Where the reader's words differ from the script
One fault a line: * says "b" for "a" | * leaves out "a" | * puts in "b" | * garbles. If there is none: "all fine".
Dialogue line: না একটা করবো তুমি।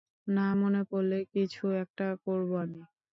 * puts in "মনে পড়লে কিছু"
* says "আমি" for "তুমি"